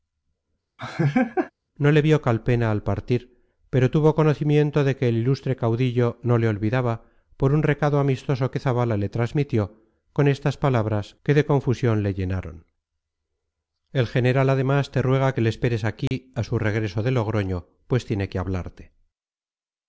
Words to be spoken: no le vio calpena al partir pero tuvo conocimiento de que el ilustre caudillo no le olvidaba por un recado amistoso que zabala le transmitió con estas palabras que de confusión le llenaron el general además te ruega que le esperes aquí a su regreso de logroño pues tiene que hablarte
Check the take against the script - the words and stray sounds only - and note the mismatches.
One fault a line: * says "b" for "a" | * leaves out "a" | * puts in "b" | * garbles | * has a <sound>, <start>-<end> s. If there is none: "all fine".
* has a laugh, 0.8-1.5 s
* has a dropout, 16.1-16.1 s